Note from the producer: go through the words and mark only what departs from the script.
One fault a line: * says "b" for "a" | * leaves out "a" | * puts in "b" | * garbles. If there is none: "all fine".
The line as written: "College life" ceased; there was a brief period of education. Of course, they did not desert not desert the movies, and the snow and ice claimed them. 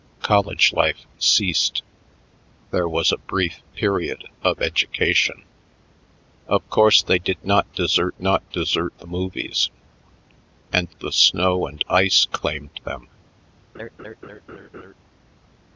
all fine